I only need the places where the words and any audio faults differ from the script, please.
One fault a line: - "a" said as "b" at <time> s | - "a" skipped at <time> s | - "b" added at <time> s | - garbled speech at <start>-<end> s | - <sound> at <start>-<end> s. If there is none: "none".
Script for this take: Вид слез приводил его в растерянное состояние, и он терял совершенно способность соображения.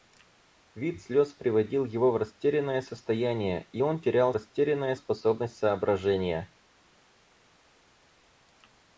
- "совершенно" said as "растерянное" at 4.3 s